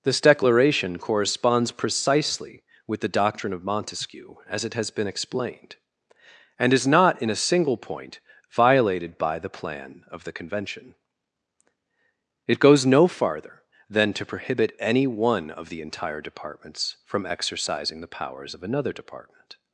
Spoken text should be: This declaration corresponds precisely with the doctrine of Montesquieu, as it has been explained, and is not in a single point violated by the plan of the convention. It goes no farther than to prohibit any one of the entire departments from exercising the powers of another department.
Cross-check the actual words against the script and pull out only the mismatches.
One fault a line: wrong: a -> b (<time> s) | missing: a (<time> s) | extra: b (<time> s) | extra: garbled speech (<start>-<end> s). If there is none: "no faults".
no faults